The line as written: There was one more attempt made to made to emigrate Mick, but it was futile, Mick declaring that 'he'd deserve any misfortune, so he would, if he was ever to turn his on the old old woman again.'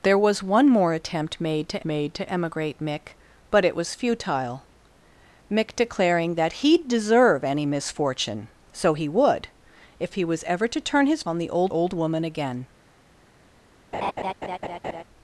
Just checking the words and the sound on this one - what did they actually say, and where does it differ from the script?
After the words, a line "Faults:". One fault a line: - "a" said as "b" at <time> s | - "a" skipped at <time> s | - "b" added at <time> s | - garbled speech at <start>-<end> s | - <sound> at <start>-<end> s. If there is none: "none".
There was one more attempt made to made to emigrate Mick, but it was futile, Mick declaring that 'he'd deserve any misfortune, so he would, if he was ever to turn his on the old old woman again.'
Faults:
- laugh at 13.9-15.0 s